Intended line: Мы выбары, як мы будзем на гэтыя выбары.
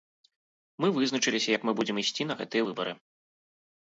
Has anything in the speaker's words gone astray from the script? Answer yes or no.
yes